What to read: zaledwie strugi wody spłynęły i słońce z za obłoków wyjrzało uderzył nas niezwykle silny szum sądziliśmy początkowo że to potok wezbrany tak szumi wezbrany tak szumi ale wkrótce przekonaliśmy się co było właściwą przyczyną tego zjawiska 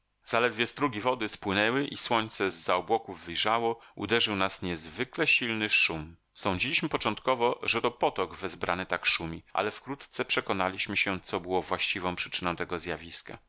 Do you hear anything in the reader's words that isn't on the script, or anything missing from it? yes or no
yes